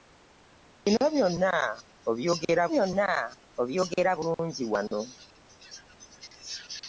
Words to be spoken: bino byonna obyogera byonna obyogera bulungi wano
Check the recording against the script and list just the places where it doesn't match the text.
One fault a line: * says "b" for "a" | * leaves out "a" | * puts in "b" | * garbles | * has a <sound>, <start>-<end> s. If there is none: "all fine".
all fine